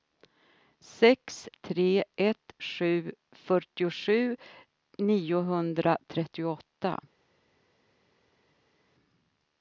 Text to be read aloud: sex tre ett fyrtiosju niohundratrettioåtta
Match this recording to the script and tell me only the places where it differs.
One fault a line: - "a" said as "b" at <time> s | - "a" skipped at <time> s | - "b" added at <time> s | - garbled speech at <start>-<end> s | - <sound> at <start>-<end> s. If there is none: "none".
- "sju" added at 2.6 s